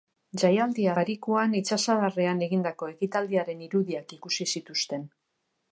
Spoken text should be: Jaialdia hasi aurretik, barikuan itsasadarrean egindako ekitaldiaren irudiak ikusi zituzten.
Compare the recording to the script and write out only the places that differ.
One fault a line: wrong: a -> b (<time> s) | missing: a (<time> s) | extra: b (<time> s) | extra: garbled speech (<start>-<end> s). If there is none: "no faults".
missing: hasi aurretik (0.9 s)